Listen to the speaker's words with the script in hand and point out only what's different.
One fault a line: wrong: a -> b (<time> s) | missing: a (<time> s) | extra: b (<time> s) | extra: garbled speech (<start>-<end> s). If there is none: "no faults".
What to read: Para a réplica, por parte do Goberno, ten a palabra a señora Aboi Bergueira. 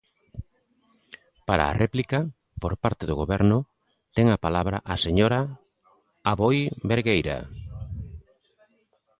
no faults